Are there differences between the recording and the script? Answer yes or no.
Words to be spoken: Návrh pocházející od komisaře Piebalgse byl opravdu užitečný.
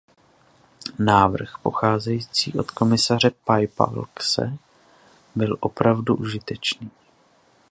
no